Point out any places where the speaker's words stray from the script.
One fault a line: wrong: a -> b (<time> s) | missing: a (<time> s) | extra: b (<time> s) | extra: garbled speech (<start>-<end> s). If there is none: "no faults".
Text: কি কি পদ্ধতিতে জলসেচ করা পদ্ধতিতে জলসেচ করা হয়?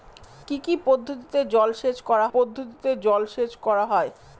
no faults